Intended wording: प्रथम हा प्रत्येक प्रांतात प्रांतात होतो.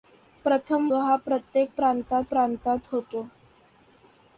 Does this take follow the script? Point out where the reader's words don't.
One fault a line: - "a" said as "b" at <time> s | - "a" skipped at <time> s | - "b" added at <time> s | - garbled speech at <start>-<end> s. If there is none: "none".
none